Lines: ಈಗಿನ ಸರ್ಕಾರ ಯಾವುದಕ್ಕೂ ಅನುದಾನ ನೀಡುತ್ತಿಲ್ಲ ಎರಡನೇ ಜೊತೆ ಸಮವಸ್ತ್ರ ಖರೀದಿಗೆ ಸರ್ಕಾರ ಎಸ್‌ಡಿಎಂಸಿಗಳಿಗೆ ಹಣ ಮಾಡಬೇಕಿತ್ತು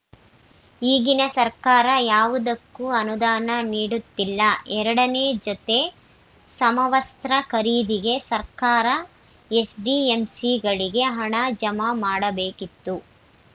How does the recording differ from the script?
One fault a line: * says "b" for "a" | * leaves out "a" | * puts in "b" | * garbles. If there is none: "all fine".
* puts in "ಜಮಾ"